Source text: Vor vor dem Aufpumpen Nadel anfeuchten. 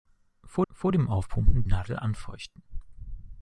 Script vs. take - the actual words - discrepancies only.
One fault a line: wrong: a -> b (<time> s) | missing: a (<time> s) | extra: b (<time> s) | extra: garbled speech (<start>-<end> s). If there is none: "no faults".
no faults